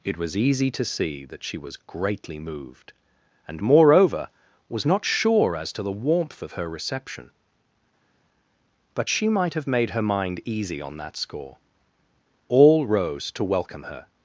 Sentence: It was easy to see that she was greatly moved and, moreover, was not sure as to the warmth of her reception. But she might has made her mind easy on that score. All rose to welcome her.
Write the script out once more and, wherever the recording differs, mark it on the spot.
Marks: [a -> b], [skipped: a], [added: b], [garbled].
It was easy to see that she was greatly moved and, moreover, was not sure as to the warmth of her reception. But she might [has -> have] made her mind easy on that score. All rose to welcome her.